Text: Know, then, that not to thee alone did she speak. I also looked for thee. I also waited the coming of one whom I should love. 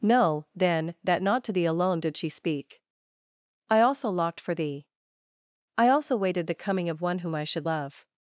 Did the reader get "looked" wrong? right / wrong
wrong